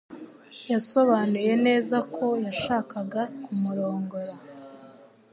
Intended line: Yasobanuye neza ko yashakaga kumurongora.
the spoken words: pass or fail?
pass